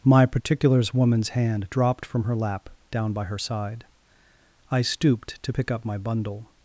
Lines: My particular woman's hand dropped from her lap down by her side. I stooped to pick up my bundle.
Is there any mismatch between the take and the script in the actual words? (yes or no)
yes